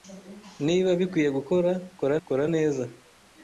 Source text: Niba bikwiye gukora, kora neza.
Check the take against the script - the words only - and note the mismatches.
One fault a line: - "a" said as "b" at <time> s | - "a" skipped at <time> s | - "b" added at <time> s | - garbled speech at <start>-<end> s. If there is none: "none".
- "kora" added at 2.3 s